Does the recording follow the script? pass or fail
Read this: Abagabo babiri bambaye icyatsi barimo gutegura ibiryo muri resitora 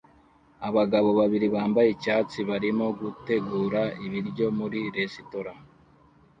pass